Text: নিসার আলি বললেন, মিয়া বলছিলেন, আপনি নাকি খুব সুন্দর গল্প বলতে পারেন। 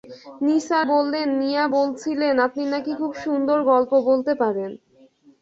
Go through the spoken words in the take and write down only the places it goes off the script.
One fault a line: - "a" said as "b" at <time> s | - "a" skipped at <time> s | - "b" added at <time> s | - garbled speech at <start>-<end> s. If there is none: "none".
- "আলি" skipped at 0.9 s